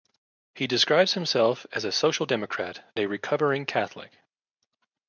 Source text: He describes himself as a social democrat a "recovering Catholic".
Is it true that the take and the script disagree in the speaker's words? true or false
false